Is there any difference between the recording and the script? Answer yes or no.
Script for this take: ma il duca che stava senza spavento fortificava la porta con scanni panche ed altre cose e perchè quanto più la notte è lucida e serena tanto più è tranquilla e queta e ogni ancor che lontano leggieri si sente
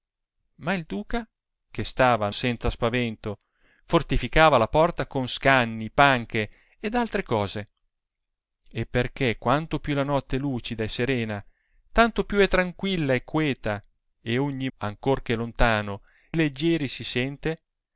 no